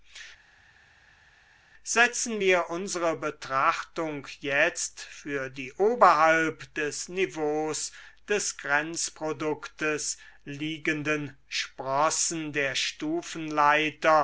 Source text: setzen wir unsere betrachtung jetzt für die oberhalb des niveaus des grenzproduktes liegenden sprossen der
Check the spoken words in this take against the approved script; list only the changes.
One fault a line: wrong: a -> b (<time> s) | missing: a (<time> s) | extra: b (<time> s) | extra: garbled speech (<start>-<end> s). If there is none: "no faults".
no faults